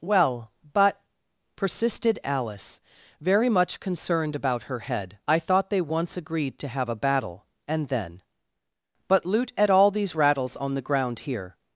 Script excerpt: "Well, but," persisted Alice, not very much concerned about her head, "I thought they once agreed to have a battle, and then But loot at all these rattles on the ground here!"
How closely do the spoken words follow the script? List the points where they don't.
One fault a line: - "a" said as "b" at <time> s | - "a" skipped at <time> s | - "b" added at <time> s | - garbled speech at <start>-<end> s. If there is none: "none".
- "not" skipped at 2.8 s